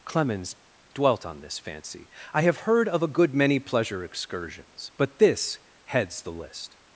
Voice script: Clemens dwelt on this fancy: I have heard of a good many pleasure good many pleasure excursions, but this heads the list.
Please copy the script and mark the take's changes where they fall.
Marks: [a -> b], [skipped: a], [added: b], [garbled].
Clemens dwelt on this fancy: I have heard of a good many pleasure [skipped: good many pleasure] excursions, but this heads the list.